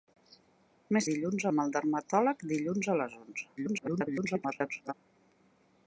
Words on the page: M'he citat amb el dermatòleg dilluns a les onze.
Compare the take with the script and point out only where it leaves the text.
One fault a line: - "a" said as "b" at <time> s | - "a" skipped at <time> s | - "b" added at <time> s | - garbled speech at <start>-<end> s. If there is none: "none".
- "citat" said as "dilluns" at 1.1 s
- garbled speech at 3.6-4.9 s